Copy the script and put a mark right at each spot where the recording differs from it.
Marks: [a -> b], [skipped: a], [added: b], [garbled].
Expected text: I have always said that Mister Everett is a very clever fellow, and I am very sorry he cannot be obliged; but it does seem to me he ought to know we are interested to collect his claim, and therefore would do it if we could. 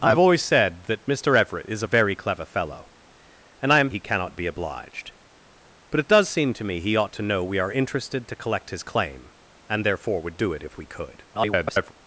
I have always said that Mister Everett is a very clever fellow, and I am [skipped: very sorry] he cannot be obliged; but it does seem to me he ought to know we are interested to collect his claim, and therefore would do it if we could. [garbled]